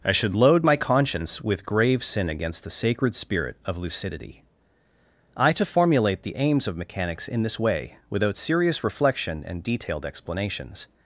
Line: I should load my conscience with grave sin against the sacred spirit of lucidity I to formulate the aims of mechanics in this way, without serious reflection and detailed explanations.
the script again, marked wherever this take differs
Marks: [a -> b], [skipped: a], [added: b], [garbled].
I should load my conscience with grave sin against the sacred spirit of lucidity I to formulate the aims of mechanics in this way, without serious reflection and detailed explanations.